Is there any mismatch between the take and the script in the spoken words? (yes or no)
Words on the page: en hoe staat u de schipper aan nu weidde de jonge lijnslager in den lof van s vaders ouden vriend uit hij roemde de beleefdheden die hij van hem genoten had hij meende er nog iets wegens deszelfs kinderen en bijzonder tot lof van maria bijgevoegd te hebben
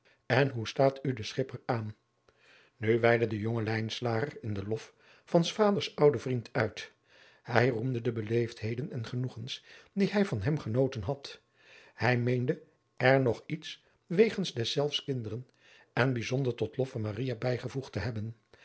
yes